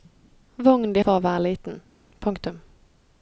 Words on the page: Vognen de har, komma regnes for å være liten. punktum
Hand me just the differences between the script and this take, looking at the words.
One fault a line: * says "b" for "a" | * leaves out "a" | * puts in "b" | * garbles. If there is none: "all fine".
* leaves out "har komma regnes"